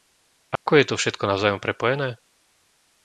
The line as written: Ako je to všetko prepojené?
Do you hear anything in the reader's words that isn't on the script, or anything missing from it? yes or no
yes